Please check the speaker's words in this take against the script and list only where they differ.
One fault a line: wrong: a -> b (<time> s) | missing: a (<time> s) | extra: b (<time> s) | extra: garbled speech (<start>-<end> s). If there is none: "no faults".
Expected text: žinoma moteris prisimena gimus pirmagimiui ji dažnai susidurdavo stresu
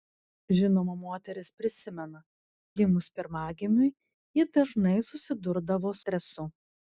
no faults